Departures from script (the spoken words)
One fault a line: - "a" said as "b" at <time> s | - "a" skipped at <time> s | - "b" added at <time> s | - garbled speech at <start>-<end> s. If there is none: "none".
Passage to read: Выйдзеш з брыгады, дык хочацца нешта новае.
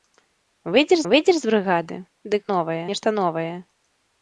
- "выйдзеш" added at 1.1 s
- "хочацца" said as "новае" at 2.5 s